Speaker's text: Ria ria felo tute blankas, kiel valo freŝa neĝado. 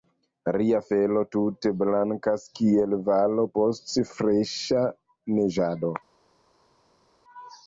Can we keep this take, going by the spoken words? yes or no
no